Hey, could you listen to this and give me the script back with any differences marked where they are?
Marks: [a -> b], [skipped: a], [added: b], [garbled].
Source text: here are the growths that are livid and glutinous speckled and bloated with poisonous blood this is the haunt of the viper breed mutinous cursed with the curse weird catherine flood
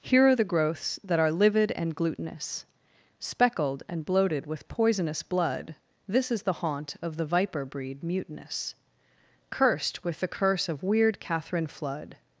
here are the growths that are livid and glutinous speckled and bloated with poisonous blood this is the haunt of the viper breed mutinous cursed with the curse [added: of] weird catherine flood